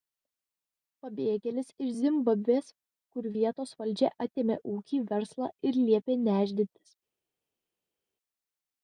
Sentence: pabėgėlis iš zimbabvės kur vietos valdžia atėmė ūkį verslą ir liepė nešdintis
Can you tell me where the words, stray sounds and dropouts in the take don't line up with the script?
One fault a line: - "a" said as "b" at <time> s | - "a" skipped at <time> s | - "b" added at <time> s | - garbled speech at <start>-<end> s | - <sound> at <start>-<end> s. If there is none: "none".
none